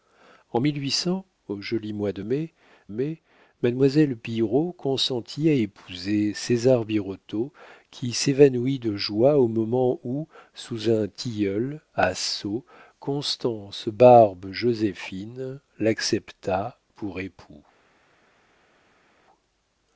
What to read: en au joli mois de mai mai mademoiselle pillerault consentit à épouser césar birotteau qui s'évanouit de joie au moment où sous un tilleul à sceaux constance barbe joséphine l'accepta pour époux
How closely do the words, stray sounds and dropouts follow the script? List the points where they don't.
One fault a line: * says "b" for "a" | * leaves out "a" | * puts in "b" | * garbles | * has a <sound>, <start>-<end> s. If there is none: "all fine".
all fine